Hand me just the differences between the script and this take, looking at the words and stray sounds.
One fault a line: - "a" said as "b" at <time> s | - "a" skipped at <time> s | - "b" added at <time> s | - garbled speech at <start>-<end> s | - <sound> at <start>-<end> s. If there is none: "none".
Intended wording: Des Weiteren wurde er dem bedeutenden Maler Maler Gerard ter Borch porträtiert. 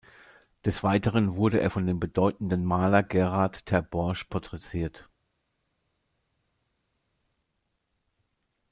- "von" added at 1.7 s
- "Maler" skipped at 3.0 s